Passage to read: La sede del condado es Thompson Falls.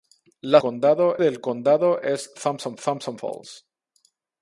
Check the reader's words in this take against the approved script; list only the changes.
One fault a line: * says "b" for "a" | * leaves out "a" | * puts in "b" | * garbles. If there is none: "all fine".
* says "condado" for "sede"
* puts in "Thompson"